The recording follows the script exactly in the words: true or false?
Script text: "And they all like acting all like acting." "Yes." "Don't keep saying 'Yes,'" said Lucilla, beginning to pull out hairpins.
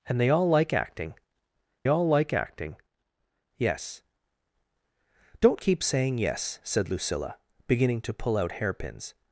true